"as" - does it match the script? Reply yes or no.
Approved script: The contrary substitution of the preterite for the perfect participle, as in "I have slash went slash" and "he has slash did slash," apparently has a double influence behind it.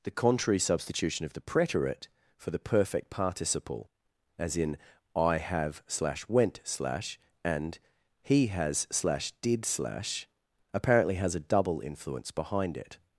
yes